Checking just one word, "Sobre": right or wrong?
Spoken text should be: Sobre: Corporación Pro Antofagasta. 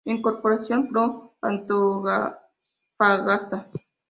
wrong